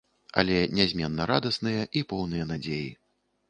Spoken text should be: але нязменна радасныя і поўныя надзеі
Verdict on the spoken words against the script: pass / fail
pass